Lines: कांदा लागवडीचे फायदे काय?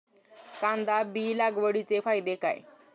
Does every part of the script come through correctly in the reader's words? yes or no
no